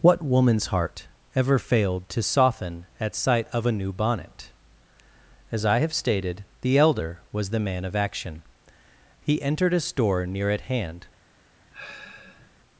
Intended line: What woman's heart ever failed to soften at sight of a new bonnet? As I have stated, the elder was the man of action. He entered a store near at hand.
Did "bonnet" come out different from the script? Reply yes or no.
no